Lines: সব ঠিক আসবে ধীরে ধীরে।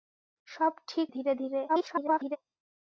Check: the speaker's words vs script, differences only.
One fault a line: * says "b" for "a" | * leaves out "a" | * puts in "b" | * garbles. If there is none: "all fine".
* leaves out "আসবে"
* garbles